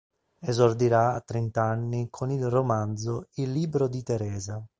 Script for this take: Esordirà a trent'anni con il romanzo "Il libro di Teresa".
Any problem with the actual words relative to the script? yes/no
no